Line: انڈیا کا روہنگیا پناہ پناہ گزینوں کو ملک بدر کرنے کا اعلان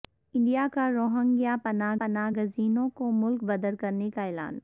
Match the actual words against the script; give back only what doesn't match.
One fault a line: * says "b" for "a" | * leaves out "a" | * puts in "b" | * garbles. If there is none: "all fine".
all fine